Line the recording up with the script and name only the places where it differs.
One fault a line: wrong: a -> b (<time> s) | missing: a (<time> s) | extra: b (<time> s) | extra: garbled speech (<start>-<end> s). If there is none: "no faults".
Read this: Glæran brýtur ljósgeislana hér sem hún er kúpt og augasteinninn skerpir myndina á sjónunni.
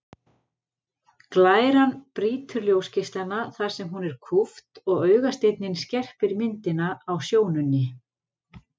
wrong: hér -> þar (3.6 s)